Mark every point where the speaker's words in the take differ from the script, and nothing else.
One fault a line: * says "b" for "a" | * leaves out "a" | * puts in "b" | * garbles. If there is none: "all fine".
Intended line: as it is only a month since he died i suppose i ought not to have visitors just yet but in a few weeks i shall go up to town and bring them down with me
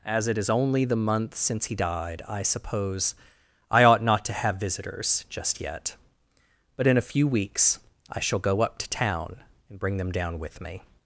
* says "the" for "a"